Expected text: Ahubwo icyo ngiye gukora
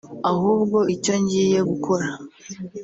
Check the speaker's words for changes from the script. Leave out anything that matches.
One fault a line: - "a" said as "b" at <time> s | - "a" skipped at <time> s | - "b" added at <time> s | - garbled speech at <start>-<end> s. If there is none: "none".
none